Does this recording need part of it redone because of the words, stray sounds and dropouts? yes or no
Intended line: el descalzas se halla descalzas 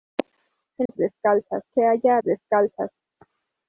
yes